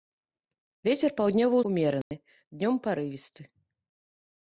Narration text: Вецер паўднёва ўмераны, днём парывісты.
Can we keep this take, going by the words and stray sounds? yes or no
no